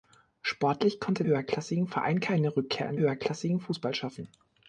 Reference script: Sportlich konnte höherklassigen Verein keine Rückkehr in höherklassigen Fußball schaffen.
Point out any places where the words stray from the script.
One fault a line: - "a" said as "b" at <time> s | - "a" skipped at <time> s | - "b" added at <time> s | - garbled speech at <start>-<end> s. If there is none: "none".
none